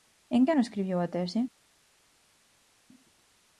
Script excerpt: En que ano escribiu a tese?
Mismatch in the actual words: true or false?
false